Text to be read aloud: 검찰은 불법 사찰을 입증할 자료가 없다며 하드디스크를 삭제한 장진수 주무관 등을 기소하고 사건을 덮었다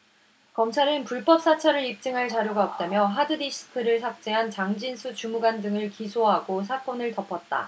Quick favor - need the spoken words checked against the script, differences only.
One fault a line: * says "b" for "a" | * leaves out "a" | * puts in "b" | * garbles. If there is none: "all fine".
all fine